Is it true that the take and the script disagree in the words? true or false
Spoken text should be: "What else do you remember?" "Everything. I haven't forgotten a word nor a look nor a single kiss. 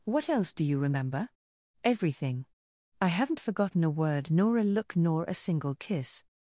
false